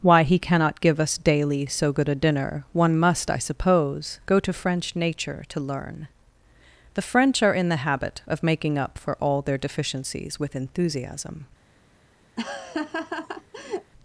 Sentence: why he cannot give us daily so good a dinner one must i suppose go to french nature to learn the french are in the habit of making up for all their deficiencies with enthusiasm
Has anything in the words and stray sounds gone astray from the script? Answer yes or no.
yes